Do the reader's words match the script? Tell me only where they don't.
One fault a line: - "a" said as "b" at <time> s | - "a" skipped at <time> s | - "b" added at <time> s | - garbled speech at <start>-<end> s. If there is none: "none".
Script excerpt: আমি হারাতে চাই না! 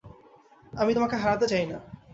- "তোমাকে" added at 0.9 s